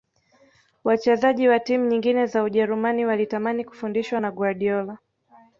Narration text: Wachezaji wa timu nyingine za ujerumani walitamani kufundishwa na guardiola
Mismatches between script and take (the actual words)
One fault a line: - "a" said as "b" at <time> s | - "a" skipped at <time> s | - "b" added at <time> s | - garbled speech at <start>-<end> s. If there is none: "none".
none